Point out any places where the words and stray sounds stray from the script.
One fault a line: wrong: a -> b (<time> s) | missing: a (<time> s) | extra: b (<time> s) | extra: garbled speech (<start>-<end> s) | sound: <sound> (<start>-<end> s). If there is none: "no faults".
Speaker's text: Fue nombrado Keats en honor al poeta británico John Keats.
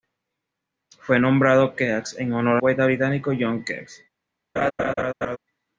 missing: al (2.6 s)
sound: laugh (4.6-5.4 s)